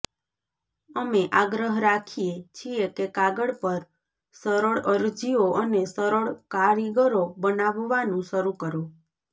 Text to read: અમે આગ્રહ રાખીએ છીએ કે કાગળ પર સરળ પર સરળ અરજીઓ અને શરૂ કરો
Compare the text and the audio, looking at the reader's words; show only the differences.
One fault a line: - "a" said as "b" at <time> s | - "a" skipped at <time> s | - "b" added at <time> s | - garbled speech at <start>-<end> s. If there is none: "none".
- "પર" said as "અરજીઓ અને" at 4.9 s
- "અરજીઓ અને" said as "કારીગરો બનાવવાનું" at 6.5 s